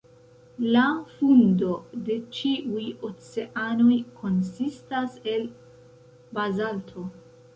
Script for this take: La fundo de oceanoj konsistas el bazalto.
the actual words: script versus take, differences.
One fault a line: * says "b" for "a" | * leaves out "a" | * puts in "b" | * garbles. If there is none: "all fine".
* puts in "ĉiuj"